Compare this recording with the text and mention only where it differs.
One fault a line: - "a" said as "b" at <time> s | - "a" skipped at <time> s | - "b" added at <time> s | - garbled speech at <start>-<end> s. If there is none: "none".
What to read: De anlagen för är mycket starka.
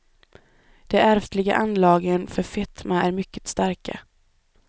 - "ärftliga" added at 1.0 s
- "fetma" added at 2.4 s